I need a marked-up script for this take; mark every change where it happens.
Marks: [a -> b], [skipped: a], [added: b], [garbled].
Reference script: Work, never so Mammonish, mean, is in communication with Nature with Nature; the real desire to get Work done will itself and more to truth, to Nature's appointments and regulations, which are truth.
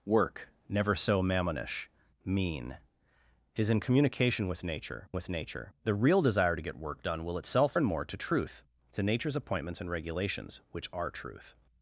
Work, never so Mammonish, mean, is in communication with Nature with Nature; the real desire to get Work done will itself and more to truth, to Nature's appointments and regulations, which are truth.